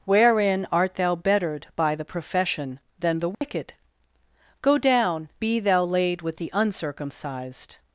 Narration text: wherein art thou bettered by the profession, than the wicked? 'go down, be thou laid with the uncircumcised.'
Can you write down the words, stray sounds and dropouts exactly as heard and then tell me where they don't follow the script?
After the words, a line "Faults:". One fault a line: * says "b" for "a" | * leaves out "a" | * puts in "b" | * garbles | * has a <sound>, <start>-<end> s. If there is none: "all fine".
wherein art thou bettered by the profession, than the wicked? 'go down, be thou laid with the uncircumcised.'
Faults:
* has a dropout, 3.3-3.4 s